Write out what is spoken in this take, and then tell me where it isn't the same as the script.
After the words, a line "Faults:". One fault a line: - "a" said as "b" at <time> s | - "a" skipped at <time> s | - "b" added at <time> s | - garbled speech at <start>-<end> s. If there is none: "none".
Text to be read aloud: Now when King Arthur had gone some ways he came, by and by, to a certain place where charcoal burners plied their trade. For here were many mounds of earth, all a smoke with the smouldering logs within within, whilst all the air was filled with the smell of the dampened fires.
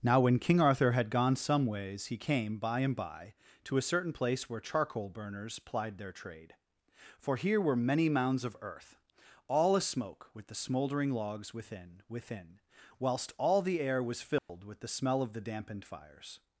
Now when King Arthur had gone some ways he came, by and by, to a certain place where charcoal burners plied their trade. For here were many mounds of earth, all a smoke with the smouldering logs within within, whilst all the air was filled with the smell of the dampened fires.
Faults:
none